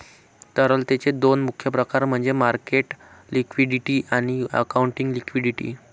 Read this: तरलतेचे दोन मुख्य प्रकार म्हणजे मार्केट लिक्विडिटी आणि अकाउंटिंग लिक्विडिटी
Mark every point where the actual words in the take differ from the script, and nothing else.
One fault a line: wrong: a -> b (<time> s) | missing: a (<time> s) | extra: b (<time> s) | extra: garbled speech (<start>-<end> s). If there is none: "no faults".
no faults